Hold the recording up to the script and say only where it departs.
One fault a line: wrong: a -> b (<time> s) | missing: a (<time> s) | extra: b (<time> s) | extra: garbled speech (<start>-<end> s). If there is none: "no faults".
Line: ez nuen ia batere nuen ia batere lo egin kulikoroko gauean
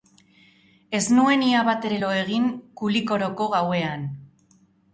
missing: nuen ia batere (2.0 s)